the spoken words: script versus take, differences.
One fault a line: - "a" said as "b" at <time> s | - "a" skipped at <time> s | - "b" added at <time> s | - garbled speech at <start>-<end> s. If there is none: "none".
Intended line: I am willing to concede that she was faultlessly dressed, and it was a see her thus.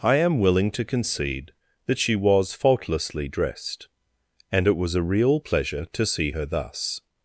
- "real pleasure to" added at 5.0 s